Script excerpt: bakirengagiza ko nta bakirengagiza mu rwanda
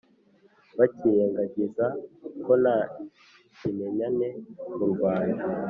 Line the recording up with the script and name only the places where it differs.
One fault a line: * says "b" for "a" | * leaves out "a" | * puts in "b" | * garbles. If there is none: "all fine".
* says "kimenyane" for "bakirengagiza"